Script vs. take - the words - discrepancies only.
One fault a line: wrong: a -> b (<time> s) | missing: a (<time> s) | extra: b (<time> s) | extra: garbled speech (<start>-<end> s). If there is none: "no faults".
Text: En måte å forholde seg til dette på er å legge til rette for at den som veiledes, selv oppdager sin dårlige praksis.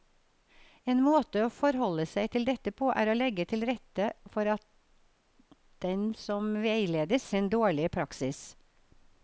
missing: selv oppdager (7.3 s)